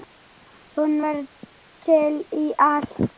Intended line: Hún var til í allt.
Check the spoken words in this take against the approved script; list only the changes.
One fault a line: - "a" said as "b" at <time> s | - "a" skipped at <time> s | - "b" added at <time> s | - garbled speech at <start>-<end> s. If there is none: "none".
none